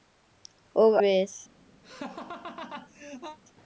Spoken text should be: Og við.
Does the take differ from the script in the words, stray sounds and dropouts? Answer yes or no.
yes